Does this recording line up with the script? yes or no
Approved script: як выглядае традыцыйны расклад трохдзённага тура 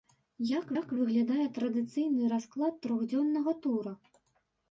no